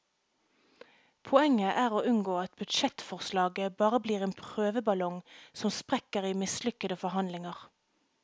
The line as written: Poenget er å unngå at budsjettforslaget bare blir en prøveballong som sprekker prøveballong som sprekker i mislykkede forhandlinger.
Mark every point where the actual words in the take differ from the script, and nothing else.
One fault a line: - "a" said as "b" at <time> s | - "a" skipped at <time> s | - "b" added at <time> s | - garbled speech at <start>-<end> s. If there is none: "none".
- "prøveballong som sprekker" skipped at 6.3 s